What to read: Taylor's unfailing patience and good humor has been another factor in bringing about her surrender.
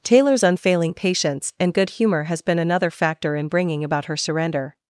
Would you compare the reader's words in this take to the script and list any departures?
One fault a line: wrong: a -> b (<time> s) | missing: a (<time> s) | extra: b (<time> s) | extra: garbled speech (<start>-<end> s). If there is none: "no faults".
no faults